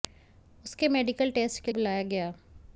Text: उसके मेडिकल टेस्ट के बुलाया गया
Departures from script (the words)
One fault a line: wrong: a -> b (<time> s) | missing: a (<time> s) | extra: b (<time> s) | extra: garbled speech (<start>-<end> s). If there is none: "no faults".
no faults